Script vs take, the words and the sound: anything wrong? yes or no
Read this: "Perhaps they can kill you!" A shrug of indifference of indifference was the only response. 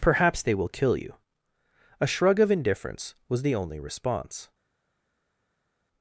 yes